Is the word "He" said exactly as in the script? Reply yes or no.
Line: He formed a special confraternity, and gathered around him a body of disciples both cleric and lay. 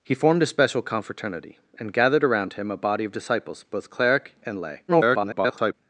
yes